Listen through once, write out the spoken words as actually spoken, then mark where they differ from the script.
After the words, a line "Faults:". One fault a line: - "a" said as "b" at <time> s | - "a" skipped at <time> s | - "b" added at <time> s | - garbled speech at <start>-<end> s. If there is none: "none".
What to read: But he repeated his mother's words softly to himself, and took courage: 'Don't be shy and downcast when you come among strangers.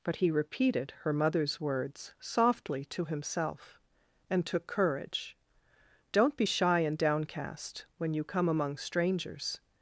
But he repeated her mother's words softly to himself, and took courage: 'Don't be shy and downcast when you come among strangers.
Faults:
- "his" said as "her" at 1.0 s